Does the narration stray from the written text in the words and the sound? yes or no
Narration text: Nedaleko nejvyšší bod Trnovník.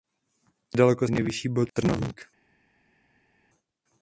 no